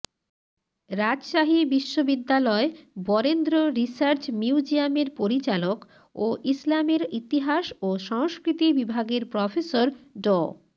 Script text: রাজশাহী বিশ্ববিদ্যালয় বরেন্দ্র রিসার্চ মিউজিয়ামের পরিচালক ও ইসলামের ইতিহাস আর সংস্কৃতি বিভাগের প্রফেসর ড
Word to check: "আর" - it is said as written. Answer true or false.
false